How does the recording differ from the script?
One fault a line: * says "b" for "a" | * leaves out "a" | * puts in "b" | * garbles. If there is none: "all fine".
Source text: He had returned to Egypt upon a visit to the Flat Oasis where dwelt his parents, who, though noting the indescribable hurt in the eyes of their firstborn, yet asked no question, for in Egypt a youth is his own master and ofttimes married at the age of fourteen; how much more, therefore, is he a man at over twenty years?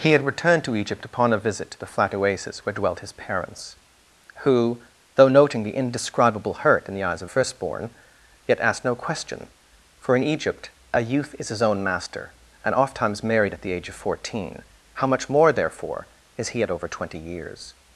* leaves out "their"
* leaves out "man"